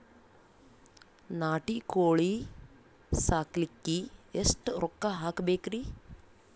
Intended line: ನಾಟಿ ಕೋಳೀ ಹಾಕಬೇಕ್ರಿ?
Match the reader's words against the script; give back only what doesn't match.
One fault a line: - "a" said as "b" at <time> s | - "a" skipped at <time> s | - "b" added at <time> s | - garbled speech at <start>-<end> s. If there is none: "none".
- "ಸಾಕಲಿಕ್ಕಿ ಎಷ್ಟ ರೊಕ್ಕ" added at 3.1 s